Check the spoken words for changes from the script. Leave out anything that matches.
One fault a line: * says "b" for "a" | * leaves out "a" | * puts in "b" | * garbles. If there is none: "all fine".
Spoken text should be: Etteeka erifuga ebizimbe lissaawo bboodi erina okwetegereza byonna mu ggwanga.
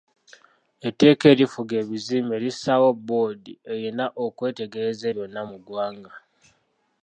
all fine